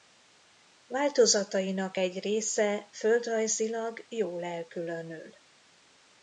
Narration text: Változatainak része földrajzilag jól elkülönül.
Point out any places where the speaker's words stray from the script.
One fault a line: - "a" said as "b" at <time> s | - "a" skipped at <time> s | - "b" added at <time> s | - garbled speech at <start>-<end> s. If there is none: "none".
- "egy" added at 1.9 s